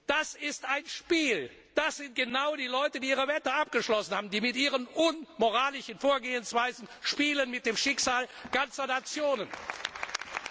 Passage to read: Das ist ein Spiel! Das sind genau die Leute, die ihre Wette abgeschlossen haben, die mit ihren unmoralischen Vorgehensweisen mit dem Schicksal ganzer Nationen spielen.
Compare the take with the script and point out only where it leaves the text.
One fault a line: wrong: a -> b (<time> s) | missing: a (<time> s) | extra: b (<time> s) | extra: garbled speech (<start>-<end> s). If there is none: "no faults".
no faults